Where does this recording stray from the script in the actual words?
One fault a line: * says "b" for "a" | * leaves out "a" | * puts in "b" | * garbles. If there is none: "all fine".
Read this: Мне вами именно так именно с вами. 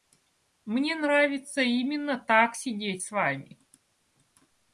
* says "нравится" for "вами"
* says "сидеть" for "именно"